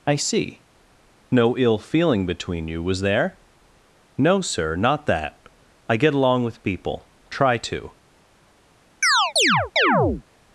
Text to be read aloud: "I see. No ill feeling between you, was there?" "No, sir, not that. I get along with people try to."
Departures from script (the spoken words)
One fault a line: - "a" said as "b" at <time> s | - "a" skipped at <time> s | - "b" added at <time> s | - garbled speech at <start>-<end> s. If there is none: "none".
none